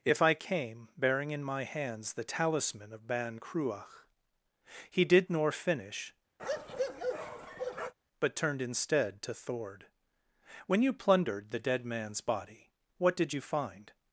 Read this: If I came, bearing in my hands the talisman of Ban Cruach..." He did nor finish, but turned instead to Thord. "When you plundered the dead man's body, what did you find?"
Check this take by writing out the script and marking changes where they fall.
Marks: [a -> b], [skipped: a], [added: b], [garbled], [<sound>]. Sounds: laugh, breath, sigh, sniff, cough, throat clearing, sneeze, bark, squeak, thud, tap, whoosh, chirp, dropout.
If I came, bearing in my hands the talisman of Ban Cruach..." He did nor finish, [bark] but turned instead to Thord. "When you plundered the dead man's body, what did you find?"